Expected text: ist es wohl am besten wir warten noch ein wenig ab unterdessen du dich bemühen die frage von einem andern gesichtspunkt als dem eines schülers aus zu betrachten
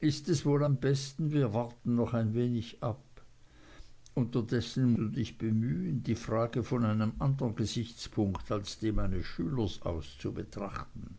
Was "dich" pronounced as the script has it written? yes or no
yes